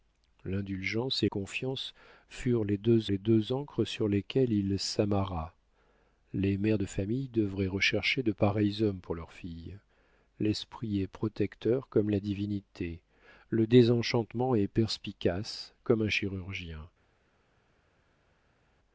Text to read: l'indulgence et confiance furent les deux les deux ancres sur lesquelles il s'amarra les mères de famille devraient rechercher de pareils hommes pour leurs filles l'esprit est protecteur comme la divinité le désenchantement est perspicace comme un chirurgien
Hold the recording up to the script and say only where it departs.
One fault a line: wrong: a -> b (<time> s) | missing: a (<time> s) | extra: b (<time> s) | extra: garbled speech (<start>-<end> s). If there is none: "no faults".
no faults